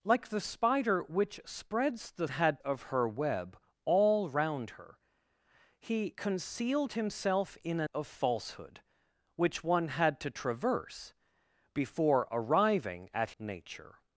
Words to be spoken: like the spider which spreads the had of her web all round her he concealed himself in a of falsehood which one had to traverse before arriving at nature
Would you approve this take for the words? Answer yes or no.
yes